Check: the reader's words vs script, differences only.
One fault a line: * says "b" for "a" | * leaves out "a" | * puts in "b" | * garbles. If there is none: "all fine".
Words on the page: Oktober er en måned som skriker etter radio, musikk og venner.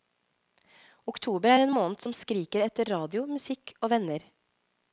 all fine